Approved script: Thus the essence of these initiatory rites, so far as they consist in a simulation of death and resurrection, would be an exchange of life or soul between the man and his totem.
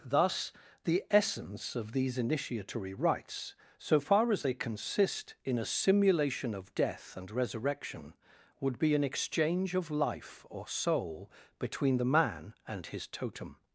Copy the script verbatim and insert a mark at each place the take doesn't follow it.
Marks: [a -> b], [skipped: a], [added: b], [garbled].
Thus the essence of these initiatory rites, so far as they consist in a simulation of death and resurrection, would be an exchange of life or soul between the man and his totem.